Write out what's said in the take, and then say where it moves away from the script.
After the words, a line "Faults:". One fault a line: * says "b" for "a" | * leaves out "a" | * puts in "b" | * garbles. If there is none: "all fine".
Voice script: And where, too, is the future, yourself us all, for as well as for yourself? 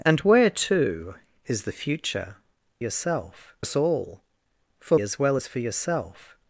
And where, too, is the future, yourself us all, for as well as for yourself?
Faults:
all fine